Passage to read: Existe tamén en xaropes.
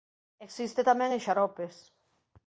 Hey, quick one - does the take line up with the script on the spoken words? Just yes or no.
yes